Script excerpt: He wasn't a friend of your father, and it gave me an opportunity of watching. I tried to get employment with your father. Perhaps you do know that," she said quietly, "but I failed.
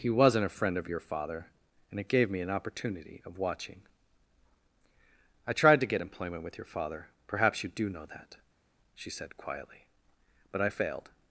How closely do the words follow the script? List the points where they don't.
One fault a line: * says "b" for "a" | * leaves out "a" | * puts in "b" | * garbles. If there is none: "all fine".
all fine